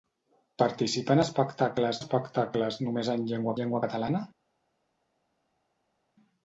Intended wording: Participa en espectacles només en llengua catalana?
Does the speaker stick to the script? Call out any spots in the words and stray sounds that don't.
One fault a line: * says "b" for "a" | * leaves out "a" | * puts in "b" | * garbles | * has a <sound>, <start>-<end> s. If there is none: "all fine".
* puts in "espectacles"
* puts in "llengua"